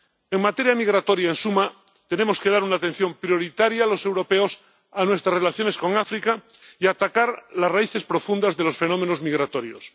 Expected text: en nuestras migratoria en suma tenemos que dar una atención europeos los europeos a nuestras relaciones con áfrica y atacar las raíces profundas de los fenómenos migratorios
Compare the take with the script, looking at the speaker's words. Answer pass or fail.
fail